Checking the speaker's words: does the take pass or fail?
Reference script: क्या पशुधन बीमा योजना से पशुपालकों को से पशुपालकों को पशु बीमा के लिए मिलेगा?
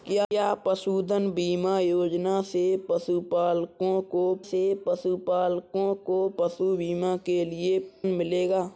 pass